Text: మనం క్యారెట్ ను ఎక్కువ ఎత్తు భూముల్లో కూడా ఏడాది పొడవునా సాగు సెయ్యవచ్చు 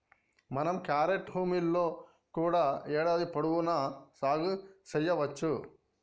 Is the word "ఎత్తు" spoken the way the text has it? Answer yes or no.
no